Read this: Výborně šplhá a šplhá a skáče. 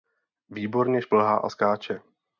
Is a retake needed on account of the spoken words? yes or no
yes